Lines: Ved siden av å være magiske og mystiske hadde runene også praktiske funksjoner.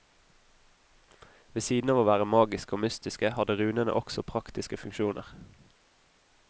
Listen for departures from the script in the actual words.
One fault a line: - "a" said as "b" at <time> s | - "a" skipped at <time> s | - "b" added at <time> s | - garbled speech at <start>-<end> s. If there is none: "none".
none